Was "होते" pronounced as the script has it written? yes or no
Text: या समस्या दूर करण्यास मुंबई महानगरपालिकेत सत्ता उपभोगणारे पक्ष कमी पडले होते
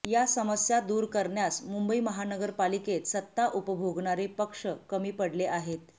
no